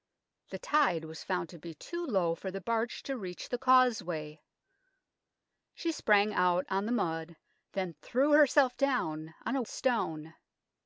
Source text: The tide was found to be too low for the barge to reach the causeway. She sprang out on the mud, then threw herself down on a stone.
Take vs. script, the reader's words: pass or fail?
pass